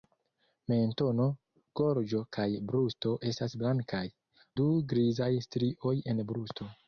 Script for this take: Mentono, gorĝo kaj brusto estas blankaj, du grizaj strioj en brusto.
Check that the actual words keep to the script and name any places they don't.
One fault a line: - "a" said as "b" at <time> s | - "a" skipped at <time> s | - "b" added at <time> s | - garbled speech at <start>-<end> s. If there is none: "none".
none